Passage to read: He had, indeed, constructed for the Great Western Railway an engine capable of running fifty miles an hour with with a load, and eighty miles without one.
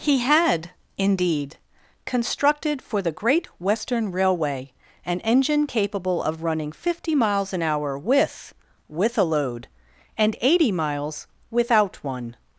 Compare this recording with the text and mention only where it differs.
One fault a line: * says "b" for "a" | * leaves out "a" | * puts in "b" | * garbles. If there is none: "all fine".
all fine